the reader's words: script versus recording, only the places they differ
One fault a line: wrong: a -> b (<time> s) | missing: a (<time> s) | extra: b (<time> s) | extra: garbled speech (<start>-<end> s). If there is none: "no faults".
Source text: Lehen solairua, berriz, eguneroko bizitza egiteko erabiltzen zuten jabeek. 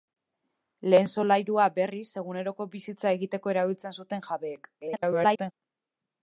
extra: garbled speech (4.8-5.5 s)